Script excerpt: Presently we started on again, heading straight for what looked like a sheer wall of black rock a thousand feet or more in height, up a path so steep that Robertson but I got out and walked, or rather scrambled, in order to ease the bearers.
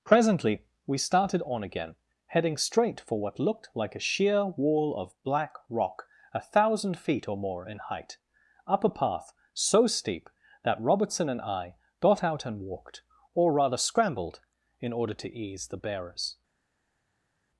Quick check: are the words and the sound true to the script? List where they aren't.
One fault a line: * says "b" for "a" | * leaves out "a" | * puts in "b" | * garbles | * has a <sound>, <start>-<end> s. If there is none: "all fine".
* says "and" for "but"